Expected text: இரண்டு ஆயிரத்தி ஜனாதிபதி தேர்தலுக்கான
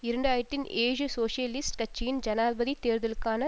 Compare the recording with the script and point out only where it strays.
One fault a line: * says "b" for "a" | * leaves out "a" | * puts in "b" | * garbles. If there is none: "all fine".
* puts in "ஏழு சோசியலிஸ்ட் கட்சியின்"